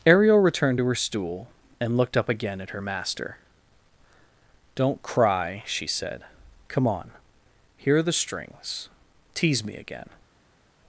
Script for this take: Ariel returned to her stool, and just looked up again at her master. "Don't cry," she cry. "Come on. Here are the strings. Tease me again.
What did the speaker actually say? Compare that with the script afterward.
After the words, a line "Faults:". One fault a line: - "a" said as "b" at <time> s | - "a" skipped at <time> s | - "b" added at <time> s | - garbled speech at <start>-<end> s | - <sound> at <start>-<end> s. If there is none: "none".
Ariel returned to her stool, and looked up again at her master. "Don't cry," she said. "Come on. Here are the strings. Tease me again.
Faults:
- "just" skipped at 2.0 s
- "cry" said as "said" at 5.9 s